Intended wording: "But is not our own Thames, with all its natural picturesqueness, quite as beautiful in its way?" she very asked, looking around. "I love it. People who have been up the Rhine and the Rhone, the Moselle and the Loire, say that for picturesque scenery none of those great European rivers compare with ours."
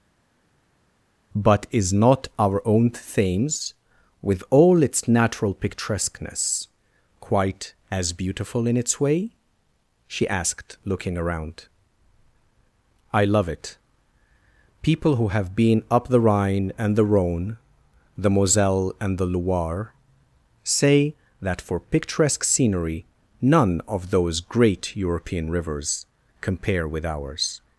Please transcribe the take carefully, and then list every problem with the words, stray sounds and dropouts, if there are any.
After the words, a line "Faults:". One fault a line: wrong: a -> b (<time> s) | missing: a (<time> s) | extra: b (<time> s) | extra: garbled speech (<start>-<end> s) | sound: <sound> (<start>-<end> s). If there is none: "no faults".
"But is not our own Thames, with all its natural picturesqueness, quite as beautiful in its way?" she asked, looking around. "I love it. People who have been up the Rhine and the Rhone, the Moselle and the Loire, say that for picturesque scenery none of those great European rivers compare with ours."
Faults:
missing: very (10.3 s)